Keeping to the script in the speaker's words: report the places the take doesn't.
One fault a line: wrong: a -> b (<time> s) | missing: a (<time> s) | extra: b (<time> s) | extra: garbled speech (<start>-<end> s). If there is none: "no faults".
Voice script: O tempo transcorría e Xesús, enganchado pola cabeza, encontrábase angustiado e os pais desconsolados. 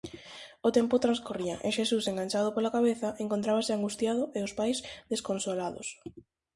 no faults